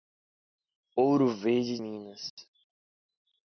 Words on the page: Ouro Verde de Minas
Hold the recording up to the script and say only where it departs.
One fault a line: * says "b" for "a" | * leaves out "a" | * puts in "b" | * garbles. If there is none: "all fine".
* leaves out "de"